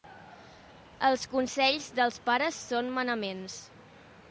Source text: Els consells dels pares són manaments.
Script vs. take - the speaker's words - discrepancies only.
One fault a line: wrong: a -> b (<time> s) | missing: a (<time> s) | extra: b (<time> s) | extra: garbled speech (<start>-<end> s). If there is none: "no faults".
no faults